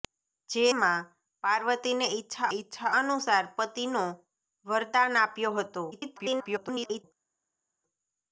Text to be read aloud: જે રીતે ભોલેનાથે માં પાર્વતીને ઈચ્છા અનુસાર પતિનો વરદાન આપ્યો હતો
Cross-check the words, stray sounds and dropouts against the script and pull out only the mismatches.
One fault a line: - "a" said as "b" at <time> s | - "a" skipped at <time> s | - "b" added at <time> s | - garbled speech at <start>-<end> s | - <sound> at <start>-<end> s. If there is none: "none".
- "રીતે ભોલેનાથે" skipped at 0.6 s
- "ઈચ્છા" added at 2.5 s
- garbled speech at 5.9-7.0 s